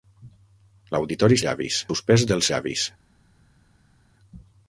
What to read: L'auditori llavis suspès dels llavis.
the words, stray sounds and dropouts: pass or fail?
pass